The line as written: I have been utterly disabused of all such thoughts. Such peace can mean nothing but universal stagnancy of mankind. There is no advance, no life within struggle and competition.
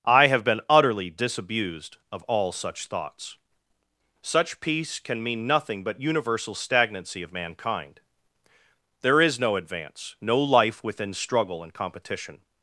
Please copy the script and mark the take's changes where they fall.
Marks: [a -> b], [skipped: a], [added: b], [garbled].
I have been utterly disabused of all such thoughts. Such peace can mean nothing but universal stagnancy of mankind. There is no advance, no life within struggle and competition.